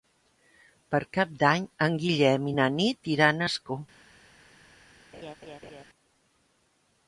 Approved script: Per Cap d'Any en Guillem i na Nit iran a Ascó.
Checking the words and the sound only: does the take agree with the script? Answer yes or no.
no